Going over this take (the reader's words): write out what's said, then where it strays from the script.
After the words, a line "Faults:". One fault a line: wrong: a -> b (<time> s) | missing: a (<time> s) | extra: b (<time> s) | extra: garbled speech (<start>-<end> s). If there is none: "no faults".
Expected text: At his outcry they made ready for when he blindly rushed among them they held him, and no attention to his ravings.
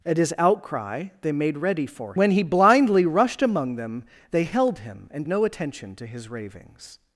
At his outcry they made ready for when he blindly rushed among them they held him, and no attention to his ravings.
Faults:
no faults